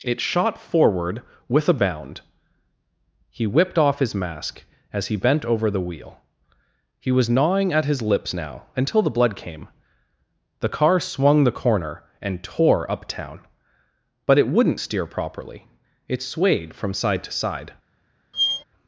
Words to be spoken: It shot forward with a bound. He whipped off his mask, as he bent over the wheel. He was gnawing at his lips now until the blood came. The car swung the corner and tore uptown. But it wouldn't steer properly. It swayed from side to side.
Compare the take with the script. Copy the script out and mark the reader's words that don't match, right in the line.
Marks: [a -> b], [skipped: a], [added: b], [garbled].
It shot forward with a bound. He whipped off his mask, as he bent over the wheel. He was gnawing at his lips now until the blood came. The car swung the corner and tore uptown. But it wouldn't steer properly. It swayed from side to side.